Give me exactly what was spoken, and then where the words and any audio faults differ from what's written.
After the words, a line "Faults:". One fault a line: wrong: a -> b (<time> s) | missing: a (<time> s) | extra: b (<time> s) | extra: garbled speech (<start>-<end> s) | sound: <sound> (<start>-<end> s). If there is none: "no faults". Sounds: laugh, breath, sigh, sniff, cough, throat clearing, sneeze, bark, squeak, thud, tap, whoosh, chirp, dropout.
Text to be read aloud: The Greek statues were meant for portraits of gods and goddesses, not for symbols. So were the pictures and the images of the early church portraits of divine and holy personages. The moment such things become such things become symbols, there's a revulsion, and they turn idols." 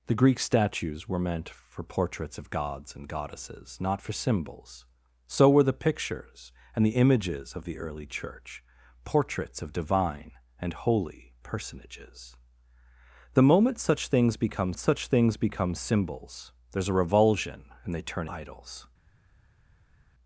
The Greek statues were meant for portraits of gods and goddesses, not for symbols. So were the pictures and the images of the early church portraits of divine and holy personages. The moment such things become such things become symbols, there's a revulsion, and they turn idols."
Faults:
no faults